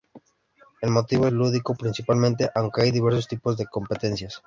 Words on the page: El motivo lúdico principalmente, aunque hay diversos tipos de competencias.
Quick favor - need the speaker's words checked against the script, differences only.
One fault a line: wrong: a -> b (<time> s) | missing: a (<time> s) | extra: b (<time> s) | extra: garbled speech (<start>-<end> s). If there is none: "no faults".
no faults